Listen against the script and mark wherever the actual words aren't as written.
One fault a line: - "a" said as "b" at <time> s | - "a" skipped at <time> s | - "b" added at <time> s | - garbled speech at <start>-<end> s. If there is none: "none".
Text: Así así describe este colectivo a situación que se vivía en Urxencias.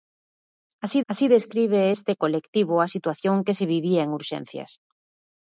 none